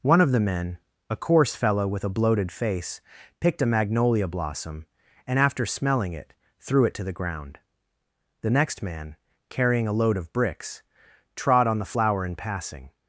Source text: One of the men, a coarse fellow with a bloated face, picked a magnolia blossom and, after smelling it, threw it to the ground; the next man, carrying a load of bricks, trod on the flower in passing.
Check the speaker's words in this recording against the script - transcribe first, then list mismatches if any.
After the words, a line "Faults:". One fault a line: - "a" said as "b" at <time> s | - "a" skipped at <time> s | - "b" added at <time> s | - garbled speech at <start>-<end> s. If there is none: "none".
One of the men, a coarse fellow with a bloated face, picked a magnolia blossom and, after smelling it, threw it to the ground; the next man, carrying a load of bricks, trod on the flower in passing.
Faults:
none